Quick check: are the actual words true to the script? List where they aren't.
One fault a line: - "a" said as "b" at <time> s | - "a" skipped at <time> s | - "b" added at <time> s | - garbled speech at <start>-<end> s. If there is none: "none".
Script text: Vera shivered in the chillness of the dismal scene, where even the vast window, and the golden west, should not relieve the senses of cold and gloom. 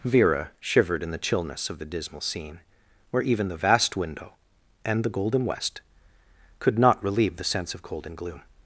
- "should" said as "could" at 6.6 s
- "senses" said as "sense" at 7.4 s